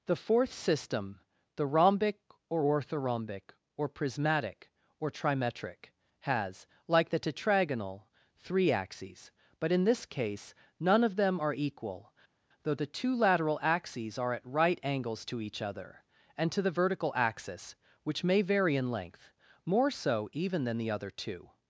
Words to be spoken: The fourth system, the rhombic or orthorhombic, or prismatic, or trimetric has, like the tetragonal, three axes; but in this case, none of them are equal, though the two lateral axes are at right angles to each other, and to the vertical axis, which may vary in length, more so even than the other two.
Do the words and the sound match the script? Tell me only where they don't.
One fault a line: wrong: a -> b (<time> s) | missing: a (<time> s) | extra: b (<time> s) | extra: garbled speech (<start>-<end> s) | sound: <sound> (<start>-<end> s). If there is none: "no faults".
no faults